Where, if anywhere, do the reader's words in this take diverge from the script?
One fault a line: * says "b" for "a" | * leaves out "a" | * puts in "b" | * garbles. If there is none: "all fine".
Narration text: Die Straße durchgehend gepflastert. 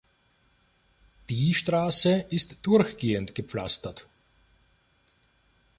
* puts in "ist"